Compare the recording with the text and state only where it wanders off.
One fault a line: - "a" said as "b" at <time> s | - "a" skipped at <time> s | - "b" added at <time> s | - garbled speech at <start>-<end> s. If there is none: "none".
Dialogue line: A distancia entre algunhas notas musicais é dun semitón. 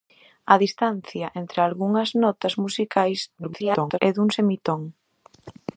- garbled speech at 3.4-4.0 s